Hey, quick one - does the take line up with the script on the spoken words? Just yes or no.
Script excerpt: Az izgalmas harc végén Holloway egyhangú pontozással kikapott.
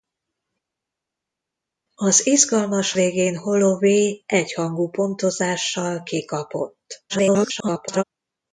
no